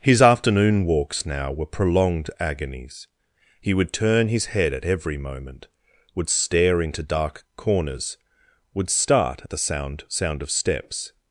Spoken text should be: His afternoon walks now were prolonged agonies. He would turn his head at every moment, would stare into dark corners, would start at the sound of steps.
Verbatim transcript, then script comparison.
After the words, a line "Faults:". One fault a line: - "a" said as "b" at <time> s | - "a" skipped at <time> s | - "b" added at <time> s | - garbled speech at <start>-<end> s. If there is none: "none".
His afternoon walks now were prolonged agonies. He would turn his head at every moment, would stare into dark corners, would start at the sound sound of steps.
Faults:
- "sound" added at 10.1 s